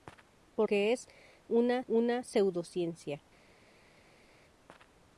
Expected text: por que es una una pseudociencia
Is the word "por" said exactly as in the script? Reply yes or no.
yes